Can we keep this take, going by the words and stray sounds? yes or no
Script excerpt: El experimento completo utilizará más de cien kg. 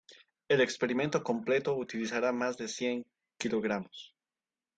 yes